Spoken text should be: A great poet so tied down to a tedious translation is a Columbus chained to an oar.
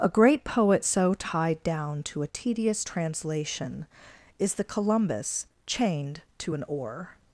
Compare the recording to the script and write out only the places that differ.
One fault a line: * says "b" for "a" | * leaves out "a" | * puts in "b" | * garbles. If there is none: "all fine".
* says "the" for "a"